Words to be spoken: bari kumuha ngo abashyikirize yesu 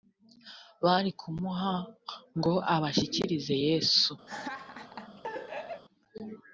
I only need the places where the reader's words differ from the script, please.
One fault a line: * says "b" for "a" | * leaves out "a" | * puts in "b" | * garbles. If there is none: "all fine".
all fine